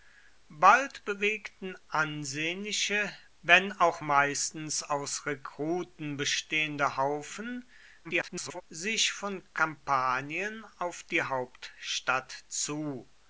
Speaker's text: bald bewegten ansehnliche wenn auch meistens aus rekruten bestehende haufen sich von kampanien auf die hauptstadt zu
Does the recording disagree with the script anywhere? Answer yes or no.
yes